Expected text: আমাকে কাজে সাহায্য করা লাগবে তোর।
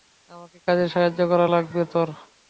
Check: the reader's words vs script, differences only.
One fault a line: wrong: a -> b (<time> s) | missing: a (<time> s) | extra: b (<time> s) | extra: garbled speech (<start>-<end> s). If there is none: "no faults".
no faults